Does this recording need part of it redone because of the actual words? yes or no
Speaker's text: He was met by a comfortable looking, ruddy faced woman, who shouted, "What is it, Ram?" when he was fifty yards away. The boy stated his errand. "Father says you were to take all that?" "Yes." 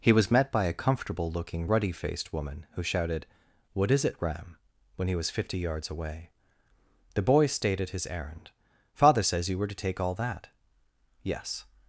no